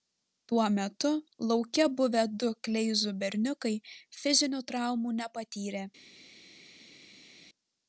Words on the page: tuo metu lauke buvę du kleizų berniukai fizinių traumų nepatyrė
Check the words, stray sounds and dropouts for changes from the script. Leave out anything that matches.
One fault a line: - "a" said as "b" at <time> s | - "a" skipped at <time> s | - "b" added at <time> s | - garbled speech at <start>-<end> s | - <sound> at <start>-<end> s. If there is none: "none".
none